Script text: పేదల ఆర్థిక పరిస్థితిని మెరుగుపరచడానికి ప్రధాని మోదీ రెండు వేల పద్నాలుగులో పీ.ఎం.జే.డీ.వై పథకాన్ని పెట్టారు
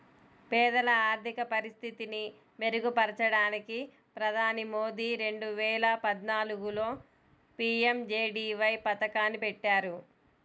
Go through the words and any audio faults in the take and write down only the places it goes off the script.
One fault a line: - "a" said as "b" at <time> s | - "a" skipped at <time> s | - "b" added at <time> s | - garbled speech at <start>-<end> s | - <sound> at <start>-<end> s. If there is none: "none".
none